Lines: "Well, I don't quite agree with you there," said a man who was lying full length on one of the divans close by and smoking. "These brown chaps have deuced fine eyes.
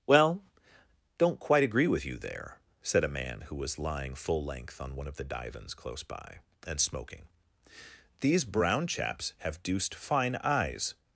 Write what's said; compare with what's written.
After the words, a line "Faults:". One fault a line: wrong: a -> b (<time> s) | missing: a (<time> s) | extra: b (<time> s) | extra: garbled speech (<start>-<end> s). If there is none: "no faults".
"Well, don't quite agree with you there," said a man who was lying full length on one of the divans close by and smoking. "These brown chaps have deuced fine eyes.
Faults:
missing: I (0.4 s)